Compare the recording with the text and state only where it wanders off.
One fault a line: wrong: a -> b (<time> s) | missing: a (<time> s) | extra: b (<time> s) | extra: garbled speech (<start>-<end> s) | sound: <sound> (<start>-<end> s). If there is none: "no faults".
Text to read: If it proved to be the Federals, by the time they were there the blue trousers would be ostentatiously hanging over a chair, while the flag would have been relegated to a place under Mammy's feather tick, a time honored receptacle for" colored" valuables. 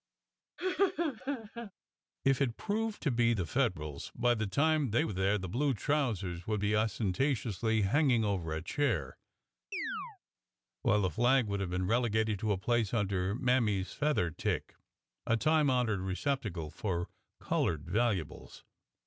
sound: laugh (0.6-1.7 s)
sound: chirp (9.7-10.2 s)